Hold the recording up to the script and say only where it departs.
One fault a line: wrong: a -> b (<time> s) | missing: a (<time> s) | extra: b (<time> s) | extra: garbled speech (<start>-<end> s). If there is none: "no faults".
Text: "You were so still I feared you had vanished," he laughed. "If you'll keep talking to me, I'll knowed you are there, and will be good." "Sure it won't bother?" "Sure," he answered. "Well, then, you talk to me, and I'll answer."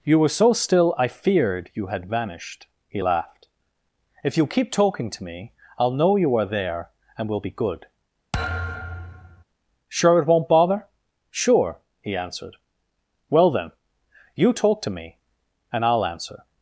wrong: knowed -> know (5.9 s)